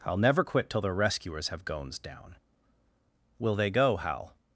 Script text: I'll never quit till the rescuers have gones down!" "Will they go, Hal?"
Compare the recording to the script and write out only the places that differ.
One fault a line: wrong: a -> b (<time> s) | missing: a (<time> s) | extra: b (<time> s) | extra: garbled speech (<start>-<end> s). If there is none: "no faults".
no faults